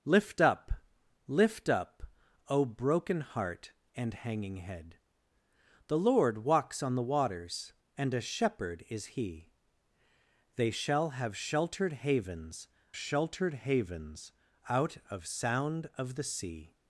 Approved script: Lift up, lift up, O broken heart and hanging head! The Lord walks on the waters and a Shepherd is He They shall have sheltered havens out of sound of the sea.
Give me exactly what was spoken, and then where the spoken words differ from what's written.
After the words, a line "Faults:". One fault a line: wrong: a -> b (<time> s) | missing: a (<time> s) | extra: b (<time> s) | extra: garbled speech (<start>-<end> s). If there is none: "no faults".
Lift up, lift up, O broken heart and hanging head! The Lord walks on the waters and a Shepherd is He They shall have sheltered havens sheltered havens out of sound of the sea.
Faults:
extra: sheltered havens (13.0 s)